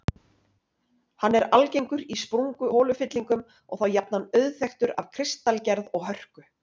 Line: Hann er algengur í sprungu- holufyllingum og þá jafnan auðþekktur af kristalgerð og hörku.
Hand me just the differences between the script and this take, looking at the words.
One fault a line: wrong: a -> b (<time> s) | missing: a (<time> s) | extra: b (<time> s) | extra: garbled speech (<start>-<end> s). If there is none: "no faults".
no faults